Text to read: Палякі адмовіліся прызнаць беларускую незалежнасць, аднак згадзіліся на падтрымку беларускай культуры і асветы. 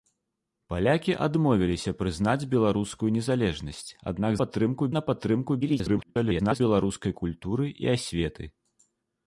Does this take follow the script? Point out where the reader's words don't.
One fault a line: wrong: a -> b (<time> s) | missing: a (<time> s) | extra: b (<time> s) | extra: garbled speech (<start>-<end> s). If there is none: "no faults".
wrong: згадзіліся -> падтрымку (4.4 s)
extra: garbled speech (5.6-6.6 s)